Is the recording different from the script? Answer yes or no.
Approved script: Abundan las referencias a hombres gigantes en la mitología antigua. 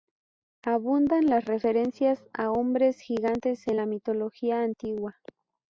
no